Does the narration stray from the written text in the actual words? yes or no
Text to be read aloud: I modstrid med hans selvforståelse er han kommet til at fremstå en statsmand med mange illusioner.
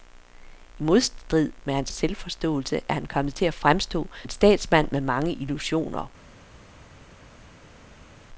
no